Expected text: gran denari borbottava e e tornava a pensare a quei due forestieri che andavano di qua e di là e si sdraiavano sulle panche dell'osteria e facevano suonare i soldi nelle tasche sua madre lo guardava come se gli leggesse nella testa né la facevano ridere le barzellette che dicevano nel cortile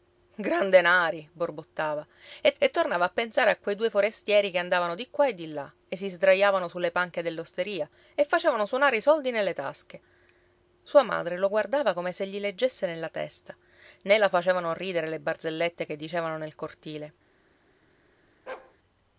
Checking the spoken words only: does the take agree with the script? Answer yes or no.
yes